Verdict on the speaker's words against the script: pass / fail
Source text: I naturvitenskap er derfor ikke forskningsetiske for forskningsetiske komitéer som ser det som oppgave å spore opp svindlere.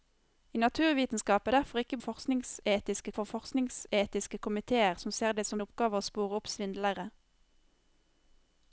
pass